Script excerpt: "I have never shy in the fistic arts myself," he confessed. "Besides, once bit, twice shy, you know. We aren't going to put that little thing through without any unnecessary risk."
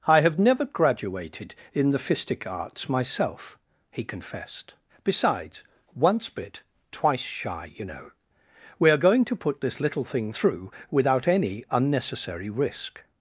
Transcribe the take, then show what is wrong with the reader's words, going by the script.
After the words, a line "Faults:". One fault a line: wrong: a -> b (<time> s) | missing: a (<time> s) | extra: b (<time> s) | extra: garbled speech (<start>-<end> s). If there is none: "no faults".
"I have never graduated in the fistic arts myself," he confessed. "Besides, once bit, twice shy, you know. We are going to put this little thing through without any unnecessary risk."
Faults:
wrong: shy -> graduated (0.7 s)
wrong: aren't -> are (8.9 s)
wrong: that -> this (9.6 s)